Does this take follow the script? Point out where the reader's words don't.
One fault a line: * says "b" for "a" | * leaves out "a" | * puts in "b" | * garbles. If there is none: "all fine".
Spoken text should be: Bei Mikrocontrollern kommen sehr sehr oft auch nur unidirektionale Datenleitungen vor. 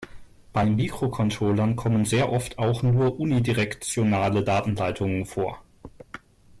* leaves out "sehr"